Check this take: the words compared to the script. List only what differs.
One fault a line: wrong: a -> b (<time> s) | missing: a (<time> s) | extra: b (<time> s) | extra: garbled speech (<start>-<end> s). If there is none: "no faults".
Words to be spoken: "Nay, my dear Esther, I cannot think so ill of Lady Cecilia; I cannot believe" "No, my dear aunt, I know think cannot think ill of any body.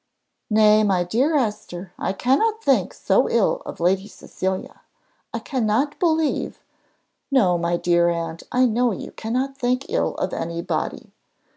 wrong: think -> you (8.9 s)